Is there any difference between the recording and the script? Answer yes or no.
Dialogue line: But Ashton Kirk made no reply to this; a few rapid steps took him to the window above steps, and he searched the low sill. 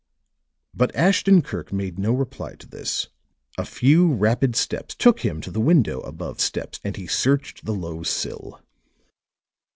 no